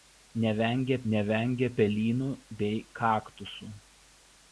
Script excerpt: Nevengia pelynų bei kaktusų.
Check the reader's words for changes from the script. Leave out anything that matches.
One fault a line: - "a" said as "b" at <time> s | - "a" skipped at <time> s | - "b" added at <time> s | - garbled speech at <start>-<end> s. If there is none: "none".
- "nevengia" added at 1.1 s